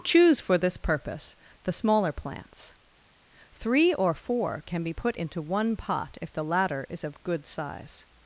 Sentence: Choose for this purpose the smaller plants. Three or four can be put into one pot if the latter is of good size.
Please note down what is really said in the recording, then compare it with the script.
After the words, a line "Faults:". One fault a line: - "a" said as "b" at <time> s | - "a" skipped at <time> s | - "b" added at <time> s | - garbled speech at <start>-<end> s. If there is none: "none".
Choose for this purpose the smaller plants. Three or four can be put into one pot if the latter is of good size.
Faults:
none